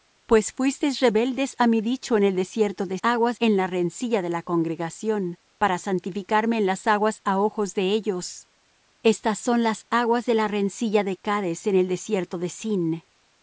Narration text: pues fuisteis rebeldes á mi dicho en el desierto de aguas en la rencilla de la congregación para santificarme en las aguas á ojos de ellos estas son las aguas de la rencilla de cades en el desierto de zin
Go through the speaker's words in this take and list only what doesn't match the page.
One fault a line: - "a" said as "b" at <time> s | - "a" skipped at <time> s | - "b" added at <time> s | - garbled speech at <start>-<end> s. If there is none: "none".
none